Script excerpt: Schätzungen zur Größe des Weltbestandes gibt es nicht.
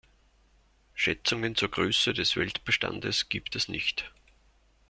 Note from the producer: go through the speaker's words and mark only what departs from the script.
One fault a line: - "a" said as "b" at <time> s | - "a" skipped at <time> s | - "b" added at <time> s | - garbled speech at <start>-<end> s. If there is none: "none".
none